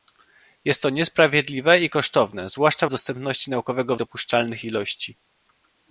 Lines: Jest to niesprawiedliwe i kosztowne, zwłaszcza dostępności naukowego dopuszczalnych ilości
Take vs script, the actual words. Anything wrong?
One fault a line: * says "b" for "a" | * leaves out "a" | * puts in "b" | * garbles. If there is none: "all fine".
all fine